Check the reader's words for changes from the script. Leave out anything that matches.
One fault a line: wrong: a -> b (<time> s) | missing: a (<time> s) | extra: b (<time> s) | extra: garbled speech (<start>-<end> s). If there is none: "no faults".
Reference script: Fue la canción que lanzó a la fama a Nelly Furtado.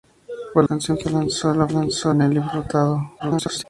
missing: la (0.6 s)
wrong: fama -> lanzó (1.7 s)
extra: garbled speech (3.2-3.6 s)